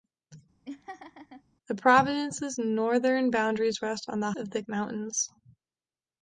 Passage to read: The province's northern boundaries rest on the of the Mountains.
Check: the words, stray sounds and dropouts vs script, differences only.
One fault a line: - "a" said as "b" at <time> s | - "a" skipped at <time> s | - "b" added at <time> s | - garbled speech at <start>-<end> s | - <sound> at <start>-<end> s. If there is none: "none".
- laugh at 0.6-1.4 s